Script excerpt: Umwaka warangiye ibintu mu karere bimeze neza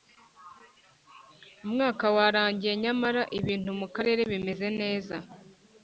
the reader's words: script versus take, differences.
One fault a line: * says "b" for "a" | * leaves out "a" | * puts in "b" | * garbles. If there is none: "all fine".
* puts in "nyamara"